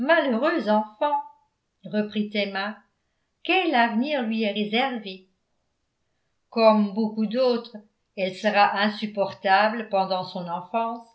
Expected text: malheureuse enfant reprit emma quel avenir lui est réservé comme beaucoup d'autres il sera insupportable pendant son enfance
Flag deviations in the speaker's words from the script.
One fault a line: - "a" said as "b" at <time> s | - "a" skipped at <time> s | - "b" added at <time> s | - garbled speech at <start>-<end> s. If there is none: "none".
- "il" said as "elle" at 8.2 s